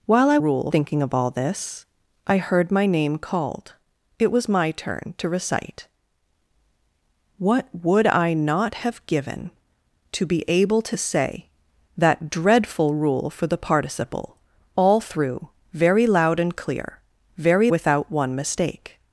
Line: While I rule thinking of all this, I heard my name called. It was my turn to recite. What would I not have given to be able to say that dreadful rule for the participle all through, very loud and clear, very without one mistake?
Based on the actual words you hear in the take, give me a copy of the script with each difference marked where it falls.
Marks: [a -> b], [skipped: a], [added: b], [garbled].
While I rule thinking of all this, I heard my name called. It was my turn to recite. What would I not have given to be able to say that dreadful rule for the participle all through, very loud and clear, very without one mistake?